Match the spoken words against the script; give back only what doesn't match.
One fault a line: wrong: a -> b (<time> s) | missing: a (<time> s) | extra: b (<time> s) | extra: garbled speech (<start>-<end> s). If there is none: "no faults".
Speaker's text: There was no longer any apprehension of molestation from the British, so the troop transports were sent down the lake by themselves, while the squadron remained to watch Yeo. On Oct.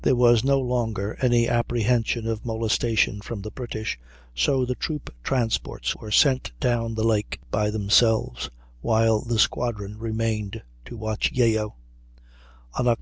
no faults